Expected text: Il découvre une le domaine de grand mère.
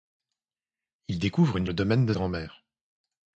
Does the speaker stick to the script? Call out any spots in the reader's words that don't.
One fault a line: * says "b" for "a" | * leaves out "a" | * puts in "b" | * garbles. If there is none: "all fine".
all fine